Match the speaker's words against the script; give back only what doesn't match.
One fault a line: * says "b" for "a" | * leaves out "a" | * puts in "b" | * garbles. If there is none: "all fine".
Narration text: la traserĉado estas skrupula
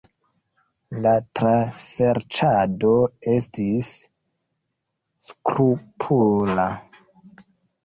* says "estis" for "estas"